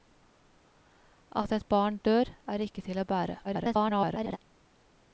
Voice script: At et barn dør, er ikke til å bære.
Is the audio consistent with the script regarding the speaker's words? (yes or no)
no